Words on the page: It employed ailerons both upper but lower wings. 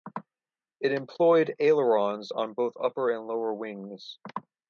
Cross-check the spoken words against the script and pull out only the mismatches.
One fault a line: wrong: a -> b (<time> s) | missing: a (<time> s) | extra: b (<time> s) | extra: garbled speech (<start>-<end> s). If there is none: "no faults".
extra: on (2.3 s)
wrong: but -> and (3.1 s)